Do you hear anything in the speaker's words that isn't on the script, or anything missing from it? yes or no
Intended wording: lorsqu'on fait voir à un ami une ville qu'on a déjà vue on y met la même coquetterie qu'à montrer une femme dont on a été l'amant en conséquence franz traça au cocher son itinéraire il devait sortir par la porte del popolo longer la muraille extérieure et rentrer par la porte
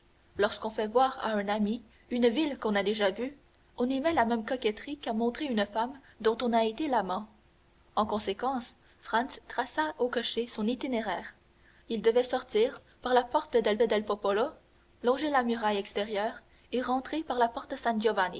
yes